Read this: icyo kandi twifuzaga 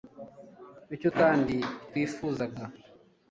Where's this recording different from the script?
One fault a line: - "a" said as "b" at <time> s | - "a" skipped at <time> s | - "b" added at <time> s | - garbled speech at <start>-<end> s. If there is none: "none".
none